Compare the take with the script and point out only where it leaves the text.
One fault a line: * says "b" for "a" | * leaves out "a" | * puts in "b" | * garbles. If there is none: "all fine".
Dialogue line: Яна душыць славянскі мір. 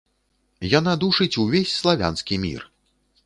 * puts in "увесь"